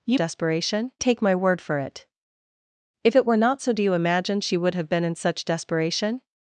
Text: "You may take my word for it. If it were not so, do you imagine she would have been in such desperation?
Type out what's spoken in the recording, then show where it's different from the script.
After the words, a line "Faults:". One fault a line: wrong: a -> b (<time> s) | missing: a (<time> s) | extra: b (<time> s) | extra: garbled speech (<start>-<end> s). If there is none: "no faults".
"You desperation take my word for it. If it were not so, do you imagine she would have been in such desperation?
Faults:
wrong: may -> desperation (0.1 s)